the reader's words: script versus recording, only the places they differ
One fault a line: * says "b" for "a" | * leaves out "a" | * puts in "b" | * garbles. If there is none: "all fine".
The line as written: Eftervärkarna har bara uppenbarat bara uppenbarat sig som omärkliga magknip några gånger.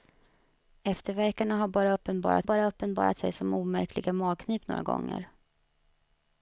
all fine